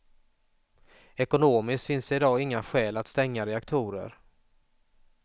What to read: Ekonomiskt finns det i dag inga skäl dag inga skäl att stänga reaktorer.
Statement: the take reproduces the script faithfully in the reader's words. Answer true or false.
false